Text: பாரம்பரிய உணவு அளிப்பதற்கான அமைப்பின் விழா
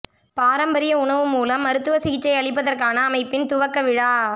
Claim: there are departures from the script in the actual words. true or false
true